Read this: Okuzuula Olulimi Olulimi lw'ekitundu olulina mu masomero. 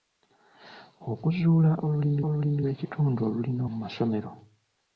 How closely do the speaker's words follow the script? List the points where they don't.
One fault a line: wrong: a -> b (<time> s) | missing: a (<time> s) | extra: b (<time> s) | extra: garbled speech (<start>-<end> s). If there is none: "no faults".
no faults